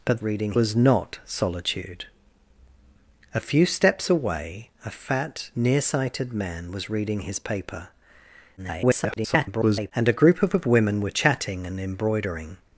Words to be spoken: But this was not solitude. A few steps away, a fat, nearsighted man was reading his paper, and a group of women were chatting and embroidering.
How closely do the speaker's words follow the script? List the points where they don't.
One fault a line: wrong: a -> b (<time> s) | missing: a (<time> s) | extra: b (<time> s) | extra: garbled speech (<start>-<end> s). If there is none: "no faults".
wrong: this -> reading (0.2 s)
extra: garbled speech (8.6-9.9 s)
extra: of (10.5 s)